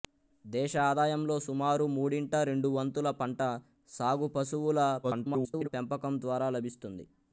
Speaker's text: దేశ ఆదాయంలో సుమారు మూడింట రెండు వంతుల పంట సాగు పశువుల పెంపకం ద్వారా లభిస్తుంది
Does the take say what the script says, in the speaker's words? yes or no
no